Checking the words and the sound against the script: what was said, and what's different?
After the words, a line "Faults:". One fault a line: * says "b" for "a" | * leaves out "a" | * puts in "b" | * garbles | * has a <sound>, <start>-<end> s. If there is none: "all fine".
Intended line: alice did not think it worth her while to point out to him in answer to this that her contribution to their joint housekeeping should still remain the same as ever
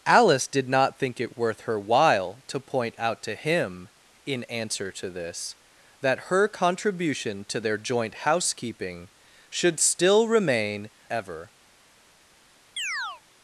alice did not think it worth her while to point out to him in answer to this that her contribution to their joint housekeeping should still remain ever
Faults:
* leaves out "the same as"
* has a chirp, 12.8-13.2 s